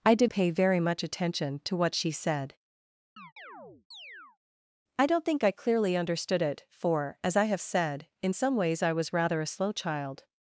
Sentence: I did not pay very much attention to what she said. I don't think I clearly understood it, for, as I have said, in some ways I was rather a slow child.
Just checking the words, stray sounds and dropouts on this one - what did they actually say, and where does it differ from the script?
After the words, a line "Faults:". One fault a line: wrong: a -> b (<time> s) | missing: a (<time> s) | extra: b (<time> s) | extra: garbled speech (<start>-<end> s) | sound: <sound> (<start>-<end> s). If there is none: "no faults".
I did pay very much attention to what she said. I don't think I clearly understood it, for, as I have said, in some ways I was rather a slow child.
Faults:
missing: not (0.3 s)
sound: chirp (3.2-4.4 s)